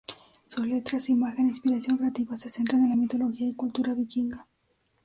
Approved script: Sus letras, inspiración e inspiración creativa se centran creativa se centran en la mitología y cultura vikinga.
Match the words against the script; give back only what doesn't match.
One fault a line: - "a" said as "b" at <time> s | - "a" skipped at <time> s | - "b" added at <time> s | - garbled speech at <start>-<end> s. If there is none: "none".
- "inspiración" said as "imagen" at 1.1 s
- "creativa se centran" skipped at 2.8 s